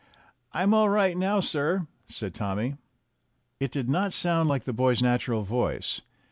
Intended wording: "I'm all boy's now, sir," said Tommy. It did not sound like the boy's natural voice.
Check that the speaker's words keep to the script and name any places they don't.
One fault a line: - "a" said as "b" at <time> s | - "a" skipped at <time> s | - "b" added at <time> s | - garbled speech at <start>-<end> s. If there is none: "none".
- "boy's" said as "right" at 0.9 s